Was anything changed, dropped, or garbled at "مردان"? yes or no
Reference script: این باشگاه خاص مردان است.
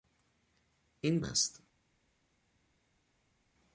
yes